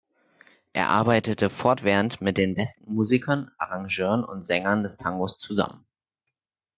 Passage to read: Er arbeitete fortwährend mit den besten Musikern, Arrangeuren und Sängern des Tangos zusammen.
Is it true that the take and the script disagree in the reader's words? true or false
false